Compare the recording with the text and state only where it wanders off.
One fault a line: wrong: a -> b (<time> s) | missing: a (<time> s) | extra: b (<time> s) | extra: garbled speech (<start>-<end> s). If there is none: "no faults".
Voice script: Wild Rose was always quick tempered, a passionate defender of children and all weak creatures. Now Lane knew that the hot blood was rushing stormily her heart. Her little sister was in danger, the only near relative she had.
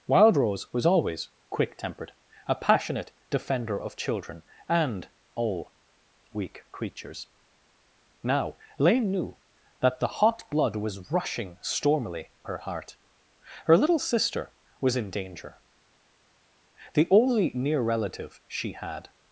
no faults